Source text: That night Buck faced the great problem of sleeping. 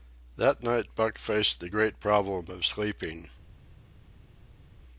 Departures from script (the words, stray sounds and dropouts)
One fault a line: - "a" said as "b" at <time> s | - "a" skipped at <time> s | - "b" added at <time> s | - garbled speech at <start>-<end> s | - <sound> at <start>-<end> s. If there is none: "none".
none